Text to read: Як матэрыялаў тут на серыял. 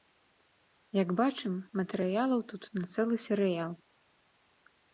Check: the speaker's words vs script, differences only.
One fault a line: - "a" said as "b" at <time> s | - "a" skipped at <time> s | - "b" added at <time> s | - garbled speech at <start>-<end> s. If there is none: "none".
- "бачым" added at 1.2 s
- "цэлы" added at 3.0 s